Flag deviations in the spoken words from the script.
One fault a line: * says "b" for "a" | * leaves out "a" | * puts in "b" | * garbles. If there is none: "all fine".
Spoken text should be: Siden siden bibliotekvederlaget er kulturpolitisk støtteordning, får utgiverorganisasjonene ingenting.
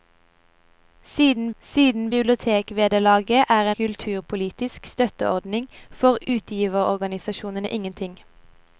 all fine